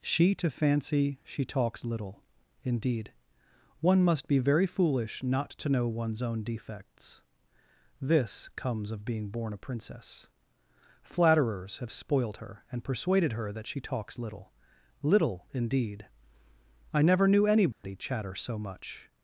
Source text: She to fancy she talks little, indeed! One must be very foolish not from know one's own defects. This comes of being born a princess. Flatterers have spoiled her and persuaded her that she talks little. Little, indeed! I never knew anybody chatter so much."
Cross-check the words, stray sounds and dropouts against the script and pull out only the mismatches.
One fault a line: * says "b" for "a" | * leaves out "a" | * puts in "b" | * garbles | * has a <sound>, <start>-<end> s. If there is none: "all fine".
* says "to" for "from"
* has a dropout, 17.7-17.8 s